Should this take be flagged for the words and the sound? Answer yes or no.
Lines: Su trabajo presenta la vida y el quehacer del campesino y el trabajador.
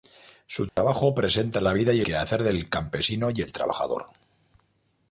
yes